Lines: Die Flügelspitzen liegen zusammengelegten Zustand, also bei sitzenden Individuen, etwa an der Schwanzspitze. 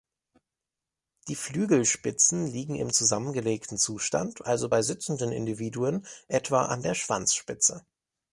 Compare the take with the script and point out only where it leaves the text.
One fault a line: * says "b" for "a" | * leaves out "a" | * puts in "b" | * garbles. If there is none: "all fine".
* puts in "im"